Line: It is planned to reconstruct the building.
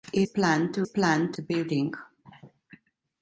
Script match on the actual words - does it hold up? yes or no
no